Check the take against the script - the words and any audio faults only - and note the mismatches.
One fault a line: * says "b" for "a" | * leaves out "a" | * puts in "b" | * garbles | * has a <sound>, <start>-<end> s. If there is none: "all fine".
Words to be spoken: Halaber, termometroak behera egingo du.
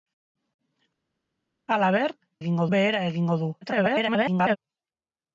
* says "egingo" for "termometroak"
* garbles